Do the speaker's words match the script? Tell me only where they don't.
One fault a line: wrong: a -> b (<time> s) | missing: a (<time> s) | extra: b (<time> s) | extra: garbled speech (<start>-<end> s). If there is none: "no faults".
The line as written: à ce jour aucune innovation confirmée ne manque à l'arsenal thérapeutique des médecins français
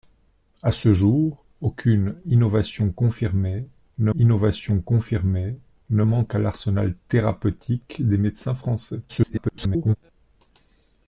extra: innovation confirmée ne (4.1 s)
extra: garbled speech (9.1-10.0 s)